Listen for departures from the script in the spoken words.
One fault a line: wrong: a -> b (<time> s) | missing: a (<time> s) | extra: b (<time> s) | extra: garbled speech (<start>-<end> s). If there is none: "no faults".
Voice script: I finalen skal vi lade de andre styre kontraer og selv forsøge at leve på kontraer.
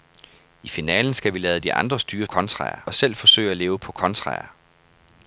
no faults